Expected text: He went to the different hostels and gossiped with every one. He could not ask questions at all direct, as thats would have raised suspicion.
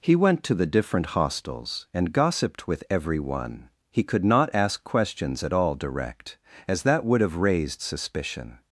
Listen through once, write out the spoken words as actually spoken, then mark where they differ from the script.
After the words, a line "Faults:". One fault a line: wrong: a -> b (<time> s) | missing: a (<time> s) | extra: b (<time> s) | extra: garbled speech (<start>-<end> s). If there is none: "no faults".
He went to the different hostels and gossiped with every one. He could not ask questions at all direct, as that would have raised suspicion.
Faults:
wrong: thats -> that (6.8 s)